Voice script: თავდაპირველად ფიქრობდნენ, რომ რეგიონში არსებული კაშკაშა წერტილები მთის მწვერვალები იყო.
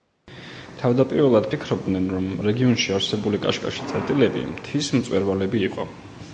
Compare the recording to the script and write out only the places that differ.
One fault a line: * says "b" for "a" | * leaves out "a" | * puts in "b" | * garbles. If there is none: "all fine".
all fine